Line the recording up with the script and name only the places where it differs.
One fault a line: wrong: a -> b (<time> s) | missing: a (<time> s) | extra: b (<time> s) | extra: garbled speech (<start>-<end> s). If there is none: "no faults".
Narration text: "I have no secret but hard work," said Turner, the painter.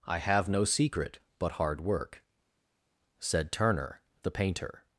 no faults